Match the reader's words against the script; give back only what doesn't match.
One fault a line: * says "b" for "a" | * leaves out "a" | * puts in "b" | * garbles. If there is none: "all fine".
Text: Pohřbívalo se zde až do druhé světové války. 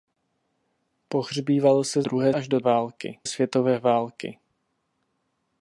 * says "druhé" for "zde"
* says "války" for "druhé"